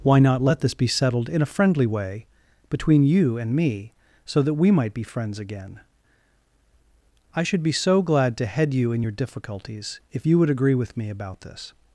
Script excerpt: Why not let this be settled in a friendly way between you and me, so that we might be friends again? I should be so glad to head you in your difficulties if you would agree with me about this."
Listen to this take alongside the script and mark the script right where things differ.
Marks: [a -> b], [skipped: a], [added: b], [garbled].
Why not let this be settled in a friendly way between you and me, so that we might be friends again? I should be so glad to head you in your difficulties if you would agree with me about this."